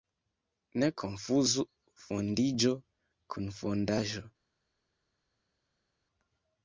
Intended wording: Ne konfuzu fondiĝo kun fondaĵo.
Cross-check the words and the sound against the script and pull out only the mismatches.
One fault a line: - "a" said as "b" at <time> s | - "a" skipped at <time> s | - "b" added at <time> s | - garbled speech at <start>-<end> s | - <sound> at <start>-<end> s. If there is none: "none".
none